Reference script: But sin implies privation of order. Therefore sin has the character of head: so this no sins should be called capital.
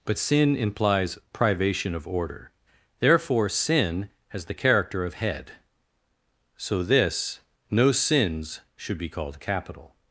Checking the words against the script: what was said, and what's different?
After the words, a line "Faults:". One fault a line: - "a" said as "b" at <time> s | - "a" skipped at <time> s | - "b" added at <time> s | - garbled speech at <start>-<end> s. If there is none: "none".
But sin implies privation of order. Therefore sin has the character of head: so this no sins should be called capital.
Faults:
none